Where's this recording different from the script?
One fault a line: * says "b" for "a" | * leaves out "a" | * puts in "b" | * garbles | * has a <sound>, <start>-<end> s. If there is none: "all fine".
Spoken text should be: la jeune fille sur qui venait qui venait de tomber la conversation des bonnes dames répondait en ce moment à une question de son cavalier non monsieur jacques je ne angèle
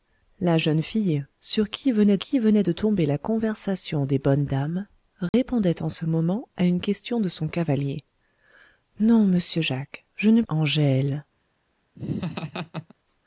* has a dropout, 5.3-5.3 s
* has a laugh, 12.0-12.9 s